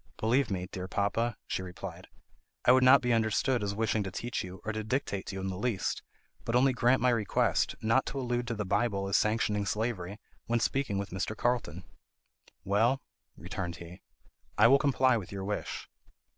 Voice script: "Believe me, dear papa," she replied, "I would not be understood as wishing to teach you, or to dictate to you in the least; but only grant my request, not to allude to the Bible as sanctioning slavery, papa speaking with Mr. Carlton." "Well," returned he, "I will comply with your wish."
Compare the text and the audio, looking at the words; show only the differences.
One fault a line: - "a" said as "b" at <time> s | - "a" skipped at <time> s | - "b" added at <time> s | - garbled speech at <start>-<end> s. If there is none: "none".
- "papa" said as "when" at 10.4 s